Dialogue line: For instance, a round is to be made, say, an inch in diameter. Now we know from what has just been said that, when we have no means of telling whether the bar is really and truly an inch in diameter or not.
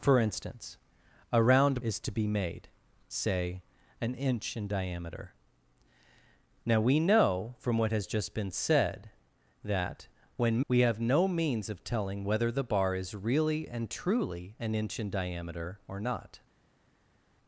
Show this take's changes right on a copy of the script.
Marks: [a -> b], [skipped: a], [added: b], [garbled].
For instance, a round is to be made, say, an inch in diameter. Now we know from what has just been said that, when we have no means of telling whether the bar is really and truly an inch in diameter or not.